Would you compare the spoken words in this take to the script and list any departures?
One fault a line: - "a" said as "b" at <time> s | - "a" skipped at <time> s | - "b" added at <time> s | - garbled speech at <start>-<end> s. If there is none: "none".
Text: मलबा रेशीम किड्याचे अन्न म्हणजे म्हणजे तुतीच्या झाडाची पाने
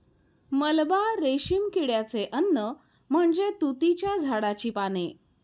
- "म्हणजे" skipped at 3.5 s